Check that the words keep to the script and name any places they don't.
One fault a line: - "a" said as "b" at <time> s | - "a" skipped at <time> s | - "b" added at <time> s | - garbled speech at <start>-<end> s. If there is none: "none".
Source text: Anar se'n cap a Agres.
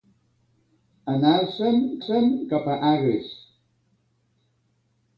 - "se'n" added at 2.1 s